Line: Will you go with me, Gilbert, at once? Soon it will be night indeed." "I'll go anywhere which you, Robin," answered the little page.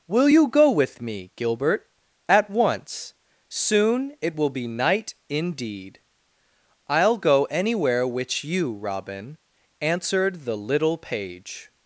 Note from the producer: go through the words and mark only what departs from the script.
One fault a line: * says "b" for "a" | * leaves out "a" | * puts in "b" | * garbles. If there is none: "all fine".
all fine